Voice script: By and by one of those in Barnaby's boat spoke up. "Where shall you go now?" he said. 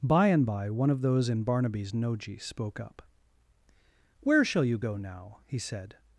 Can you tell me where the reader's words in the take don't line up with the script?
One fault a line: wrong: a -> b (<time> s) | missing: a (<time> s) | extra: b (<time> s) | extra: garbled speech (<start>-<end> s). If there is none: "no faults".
wrong: boat -> noji (1.9 s)